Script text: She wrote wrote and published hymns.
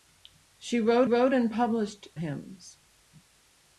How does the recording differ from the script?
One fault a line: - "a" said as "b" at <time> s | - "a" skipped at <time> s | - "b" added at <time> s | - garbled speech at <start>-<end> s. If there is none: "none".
none